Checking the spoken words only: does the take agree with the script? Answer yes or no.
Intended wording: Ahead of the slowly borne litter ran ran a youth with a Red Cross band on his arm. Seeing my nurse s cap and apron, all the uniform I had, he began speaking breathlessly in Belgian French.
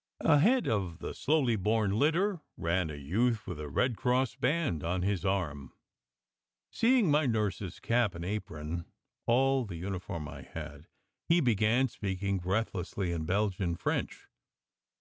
no